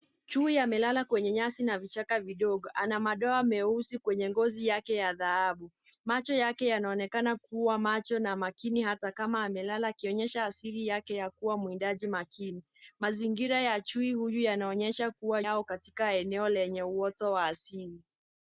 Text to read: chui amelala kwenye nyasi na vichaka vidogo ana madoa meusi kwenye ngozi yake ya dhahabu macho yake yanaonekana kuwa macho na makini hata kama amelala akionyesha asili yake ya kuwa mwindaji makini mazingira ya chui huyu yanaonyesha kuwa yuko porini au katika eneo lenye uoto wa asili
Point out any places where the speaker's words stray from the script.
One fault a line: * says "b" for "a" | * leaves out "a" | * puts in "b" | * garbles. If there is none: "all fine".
* leaves out "yuko porini"